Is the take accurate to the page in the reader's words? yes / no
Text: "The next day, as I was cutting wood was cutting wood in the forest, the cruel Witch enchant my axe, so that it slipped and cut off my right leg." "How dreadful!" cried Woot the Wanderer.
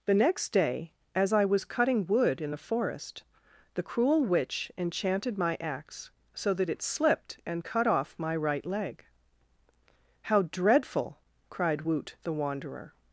no